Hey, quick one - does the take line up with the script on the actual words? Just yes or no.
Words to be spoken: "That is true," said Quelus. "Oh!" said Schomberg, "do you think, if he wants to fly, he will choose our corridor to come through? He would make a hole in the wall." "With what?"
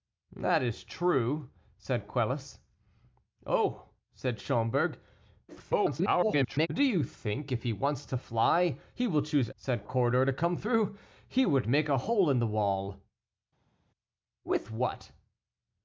no